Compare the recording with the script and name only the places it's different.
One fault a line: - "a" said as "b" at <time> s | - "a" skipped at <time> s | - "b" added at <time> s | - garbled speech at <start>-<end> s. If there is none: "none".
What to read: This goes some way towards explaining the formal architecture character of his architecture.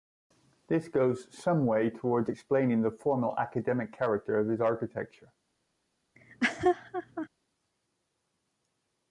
- "architecture" said as "academic" at 3.4 s